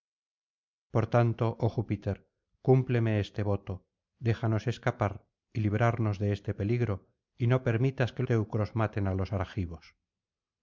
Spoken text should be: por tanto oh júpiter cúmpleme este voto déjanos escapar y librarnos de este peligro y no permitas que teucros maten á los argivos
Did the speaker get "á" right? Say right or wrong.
right